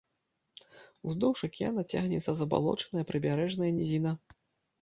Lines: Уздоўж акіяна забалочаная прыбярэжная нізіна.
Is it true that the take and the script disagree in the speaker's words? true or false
true